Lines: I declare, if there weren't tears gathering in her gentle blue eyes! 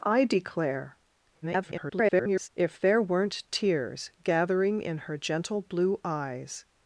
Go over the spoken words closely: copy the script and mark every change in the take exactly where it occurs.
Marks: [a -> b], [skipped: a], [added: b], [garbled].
I declare, [garbled] if there weren't tears gathering in her gentle blue eyes!